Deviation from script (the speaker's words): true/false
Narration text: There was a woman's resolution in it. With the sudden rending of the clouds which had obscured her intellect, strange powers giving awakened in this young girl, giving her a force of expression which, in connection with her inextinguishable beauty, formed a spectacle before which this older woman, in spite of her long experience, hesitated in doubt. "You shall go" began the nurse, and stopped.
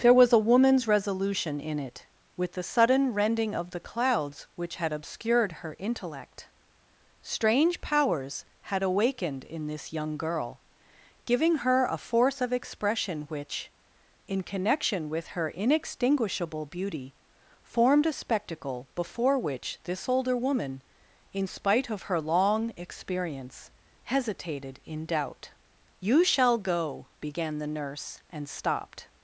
true